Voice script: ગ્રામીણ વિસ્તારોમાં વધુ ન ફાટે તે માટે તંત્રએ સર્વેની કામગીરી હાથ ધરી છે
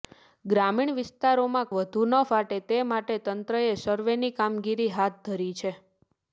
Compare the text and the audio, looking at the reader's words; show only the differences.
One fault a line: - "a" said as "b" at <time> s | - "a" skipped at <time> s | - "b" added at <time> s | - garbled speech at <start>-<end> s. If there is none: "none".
none